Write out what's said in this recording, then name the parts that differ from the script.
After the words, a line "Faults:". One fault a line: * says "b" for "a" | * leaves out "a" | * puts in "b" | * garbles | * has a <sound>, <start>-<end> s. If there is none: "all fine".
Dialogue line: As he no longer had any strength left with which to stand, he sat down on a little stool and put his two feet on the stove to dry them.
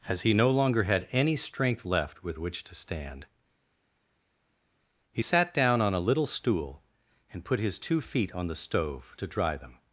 As he no longer had any strength left with which to stand, he sat down on a little stool and put his two feet on the stove to dry them.
Faults:
all fine